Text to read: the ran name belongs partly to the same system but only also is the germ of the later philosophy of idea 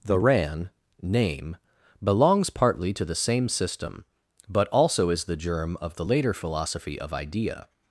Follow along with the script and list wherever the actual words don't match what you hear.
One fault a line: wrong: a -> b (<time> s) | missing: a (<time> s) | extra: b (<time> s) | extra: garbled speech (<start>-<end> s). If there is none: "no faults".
missing: only (4.7 s)